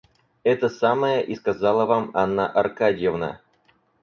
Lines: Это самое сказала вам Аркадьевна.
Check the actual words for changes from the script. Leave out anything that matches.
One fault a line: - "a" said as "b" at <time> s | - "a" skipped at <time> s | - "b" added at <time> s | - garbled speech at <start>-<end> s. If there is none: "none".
- "и" added at 1.2 s
- "Анна" added at 2.1 s